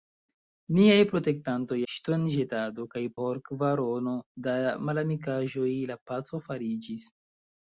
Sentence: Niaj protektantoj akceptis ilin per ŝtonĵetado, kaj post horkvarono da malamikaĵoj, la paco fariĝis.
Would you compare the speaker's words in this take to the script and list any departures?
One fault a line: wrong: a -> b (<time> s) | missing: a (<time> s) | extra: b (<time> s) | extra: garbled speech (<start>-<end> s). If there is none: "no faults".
missing: akceptis ilin per (1.8 s)
missing: post (3.0 s)